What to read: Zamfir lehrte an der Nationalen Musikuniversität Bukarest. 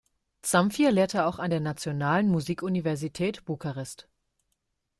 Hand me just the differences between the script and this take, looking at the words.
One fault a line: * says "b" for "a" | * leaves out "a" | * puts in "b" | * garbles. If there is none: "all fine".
* puts in "auch"